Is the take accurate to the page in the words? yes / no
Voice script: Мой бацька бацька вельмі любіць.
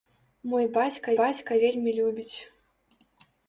yes